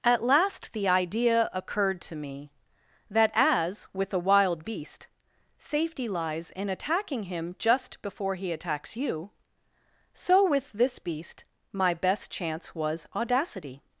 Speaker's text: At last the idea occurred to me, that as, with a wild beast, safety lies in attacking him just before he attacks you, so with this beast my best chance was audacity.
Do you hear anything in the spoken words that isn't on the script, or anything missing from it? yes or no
no